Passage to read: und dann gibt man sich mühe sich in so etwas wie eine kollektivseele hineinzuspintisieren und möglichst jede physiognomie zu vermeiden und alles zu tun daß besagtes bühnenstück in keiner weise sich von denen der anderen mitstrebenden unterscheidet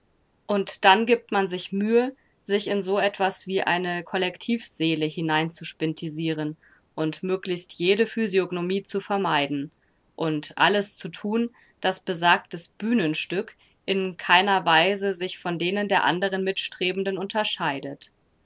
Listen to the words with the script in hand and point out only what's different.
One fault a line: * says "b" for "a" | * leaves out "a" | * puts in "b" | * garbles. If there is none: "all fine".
all fine